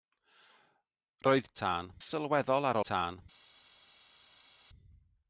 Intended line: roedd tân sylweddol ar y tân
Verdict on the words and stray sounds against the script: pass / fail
pass